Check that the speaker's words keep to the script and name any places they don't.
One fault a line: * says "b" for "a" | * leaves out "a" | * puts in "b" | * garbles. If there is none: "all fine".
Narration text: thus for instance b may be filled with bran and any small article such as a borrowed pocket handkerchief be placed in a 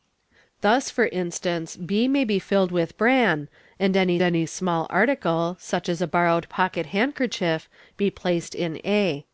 * puts in "any"